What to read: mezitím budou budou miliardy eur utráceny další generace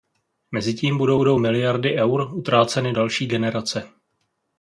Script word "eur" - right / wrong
right